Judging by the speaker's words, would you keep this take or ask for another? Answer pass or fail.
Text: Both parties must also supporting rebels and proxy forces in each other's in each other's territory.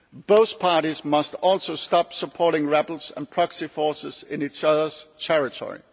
fail